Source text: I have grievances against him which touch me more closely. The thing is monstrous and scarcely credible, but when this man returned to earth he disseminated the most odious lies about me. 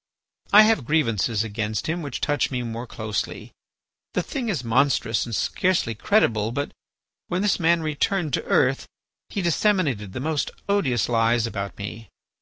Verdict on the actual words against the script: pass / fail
pass